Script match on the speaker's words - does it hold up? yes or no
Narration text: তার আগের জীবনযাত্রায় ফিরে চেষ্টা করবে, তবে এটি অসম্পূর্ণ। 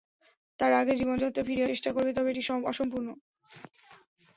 yes